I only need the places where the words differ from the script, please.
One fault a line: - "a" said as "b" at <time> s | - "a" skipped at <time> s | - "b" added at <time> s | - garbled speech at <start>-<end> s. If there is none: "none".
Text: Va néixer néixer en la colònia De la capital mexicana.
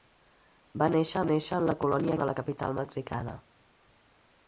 none